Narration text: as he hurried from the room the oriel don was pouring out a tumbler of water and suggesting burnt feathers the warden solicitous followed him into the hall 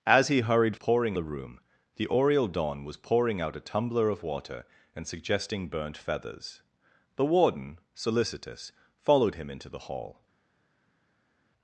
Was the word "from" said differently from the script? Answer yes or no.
yes